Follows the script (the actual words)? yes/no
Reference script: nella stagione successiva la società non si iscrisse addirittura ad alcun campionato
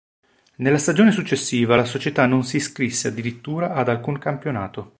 yes